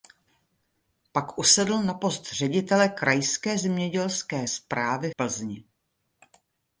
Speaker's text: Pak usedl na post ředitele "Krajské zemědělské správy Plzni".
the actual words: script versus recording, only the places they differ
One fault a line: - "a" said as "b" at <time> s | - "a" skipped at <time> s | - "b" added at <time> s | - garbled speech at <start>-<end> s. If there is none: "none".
none